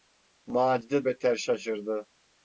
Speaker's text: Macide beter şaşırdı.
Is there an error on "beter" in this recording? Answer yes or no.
no